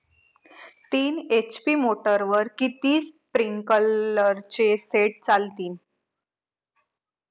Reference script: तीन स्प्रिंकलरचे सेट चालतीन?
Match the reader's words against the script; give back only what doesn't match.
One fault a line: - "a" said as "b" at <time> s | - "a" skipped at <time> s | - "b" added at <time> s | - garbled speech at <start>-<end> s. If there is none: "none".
- "एच.पी मोटरवर किती" added at 1.3 s